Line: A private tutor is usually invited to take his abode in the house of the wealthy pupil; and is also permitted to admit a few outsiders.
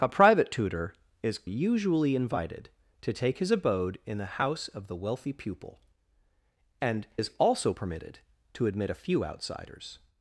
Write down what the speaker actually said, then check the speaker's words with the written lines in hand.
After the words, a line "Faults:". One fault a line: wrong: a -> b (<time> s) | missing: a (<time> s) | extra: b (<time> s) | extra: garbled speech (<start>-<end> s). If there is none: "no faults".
A private tutor is usually invited to take his abode in the house of the wealthy pupil; and is also permitted to admit a few outsiders.
Faults:
no faults